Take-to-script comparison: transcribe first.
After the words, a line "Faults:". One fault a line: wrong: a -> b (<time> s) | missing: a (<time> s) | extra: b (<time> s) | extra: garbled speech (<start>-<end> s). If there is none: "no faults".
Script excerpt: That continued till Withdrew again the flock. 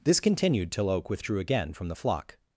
This continued till Oak withdrew again from the flock.
Faults:
wrong: That -> This (0.0 s)
extra: Oak (0.9 s)
extra: from (1.7 s)